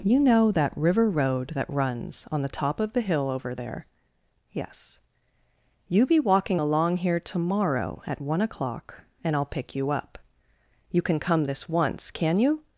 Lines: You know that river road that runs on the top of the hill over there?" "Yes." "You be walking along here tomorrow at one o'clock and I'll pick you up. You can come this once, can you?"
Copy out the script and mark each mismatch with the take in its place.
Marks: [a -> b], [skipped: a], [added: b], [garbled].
You know that river road that runs on the top of the hill over there?" "Yes." "You be walking along here tomorrow at one o'clock and I'll pick you up. You can come this once, can you?"